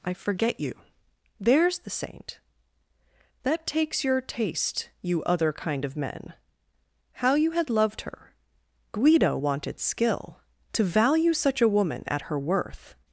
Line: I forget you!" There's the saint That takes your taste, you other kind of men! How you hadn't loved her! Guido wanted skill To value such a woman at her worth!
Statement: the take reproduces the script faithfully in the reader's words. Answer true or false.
false